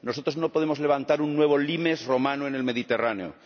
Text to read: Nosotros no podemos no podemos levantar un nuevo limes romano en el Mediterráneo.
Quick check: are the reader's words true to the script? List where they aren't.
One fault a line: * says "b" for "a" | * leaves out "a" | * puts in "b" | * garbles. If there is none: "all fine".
* leaves out "no podemos"